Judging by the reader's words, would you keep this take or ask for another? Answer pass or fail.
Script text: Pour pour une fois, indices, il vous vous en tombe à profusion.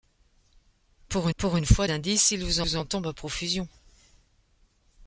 pass